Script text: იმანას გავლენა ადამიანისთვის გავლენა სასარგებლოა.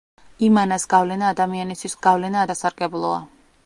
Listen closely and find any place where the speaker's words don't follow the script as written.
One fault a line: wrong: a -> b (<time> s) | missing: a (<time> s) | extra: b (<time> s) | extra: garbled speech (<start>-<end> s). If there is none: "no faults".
no faults